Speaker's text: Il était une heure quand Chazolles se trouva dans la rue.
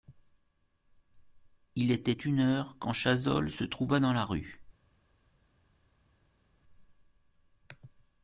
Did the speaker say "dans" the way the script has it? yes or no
yes